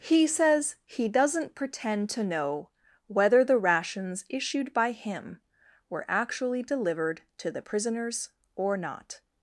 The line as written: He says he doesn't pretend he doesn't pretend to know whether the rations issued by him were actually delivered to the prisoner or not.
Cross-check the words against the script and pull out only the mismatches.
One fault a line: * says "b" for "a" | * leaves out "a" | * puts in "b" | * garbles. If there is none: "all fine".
* leaves out "he doesn't pretend"
* says "prisoners" for "prisoner"